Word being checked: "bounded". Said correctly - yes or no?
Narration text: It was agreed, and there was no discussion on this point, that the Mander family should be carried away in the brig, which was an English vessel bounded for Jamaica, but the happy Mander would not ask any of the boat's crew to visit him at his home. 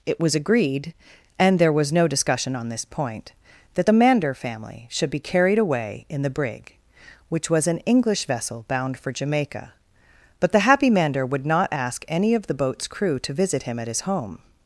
no